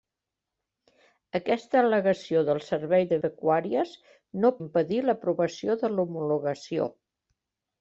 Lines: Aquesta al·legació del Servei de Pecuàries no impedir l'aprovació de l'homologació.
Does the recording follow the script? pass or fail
pass